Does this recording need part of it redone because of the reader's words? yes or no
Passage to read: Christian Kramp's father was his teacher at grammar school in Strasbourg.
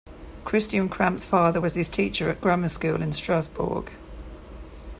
no